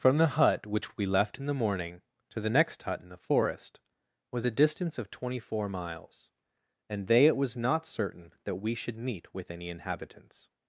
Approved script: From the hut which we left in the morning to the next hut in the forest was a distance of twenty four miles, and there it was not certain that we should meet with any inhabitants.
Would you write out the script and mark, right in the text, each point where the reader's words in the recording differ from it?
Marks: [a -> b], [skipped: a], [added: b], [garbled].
From the hut which we left in the morning to the next hut in the forest was a distance of twenty four miles, and [there -> they] it was not certain that we should meet with any inhabitants.